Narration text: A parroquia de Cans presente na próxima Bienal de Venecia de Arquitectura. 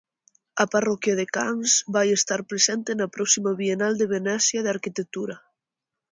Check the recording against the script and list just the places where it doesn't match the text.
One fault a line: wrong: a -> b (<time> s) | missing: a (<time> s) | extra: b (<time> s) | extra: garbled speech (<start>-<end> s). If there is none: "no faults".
extra: vai estar (1.9 s)